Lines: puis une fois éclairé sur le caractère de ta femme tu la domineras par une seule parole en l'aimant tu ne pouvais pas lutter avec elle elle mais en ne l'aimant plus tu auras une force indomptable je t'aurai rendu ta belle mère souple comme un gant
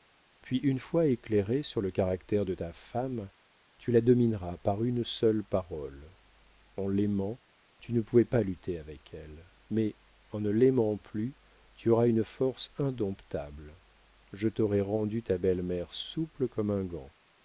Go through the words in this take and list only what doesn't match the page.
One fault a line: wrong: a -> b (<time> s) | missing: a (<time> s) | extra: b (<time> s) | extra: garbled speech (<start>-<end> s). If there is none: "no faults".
missing: elle (9.4 s)